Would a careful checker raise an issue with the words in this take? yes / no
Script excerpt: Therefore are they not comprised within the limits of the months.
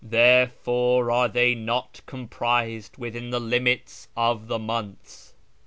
no